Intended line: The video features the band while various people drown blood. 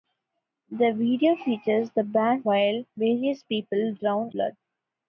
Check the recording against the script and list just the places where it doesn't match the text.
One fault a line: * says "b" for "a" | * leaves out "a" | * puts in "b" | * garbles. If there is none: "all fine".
all fine